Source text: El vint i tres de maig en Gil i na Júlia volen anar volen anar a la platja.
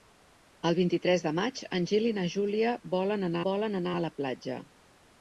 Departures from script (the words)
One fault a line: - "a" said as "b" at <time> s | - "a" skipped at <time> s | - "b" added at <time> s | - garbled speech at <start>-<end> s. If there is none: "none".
none